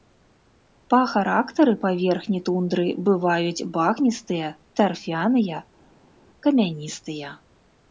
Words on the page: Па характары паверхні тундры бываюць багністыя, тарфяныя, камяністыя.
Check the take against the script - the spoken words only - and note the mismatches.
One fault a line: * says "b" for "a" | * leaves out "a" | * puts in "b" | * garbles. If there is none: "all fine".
all fine